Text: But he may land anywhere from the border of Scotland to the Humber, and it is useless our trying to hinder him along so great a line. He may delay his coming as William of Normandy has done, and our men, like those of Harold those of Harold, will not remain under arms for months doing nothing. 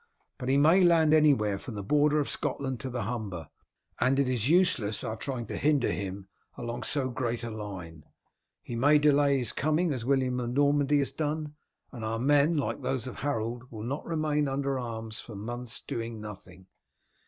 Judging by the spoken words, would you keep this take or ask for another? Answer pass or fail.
fail